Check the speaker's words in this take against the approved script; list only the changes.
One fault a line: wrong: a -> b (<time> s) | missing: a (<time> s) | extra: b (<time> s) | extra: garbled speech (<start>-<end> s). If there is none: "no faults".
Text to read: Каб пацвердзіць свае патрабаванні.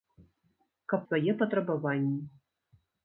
missing: пацвердзіць (1.0 s)